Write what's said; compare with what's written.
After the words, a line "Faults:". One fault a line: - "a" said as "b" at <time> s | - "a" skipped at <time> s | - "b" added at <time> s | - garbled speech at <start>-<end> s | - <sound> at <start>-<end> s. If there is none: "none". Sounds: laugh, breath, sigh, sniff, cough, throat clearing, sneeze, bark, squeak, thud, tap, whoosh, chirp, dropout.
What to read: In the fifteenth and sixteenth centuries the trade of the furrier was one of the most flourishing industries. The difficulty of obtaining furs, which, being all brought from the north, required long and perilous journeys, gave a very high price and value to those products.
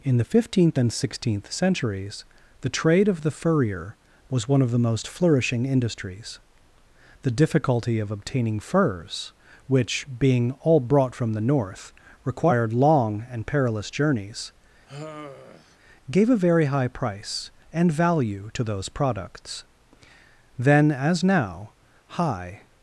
In the fifteenth and sixteenth centuries the trade of the furrier was one of the most flourishing industries. The difficulty of obtaining furs, which, being all brought from the north, required long and perilous journeys, gave a very high price and value to those products. Then, as now, high
Faults:
- sigh at 14.9-15.8 s
- "Then as now high" added at 20.5 s